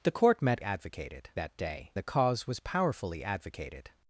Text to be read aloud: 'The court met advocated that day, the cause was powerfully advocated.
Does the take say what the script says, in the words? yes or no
yes